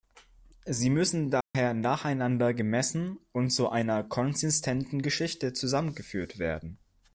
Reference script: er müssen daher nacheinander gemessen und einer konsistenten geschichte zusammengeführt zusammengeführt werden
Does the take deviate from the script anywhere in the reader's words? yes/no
yes